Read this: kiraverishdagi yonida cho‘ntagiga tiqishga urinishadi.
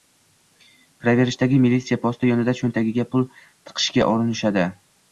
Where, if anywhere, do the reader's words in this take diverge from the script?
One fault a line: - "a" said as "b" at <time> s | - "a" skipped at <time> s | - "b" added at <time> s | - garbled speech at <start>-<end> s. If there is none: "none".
- "militsiya posti" added at 1.7 s
- "pul" added at 3.1 s